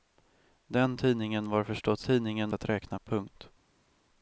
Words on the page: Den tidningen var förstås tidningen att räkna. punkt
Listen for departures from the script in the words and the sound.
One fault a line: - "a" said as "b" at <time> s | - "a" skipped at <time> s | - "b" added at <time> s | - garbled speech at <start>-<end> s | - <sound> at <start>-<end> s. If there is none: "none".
none